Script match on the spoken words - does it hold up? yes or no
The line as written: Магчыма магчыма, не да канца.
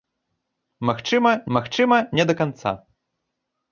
yes